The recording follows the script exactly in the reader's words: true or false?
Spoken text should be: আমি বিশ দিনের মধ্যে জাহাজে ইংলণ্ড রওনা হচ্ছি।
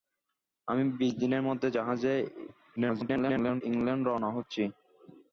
false